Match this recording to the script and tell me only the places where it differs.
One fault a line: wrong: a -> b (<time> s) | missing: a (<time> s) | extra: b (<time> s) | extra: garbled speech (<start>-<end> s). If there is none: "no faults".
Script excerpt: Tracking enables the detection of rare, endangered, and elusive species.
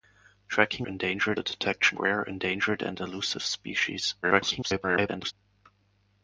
wrong: enables -> endangered (0.8 s)
missing: of (2.0 s)
extra: garbled speech (4.2-5.3 s)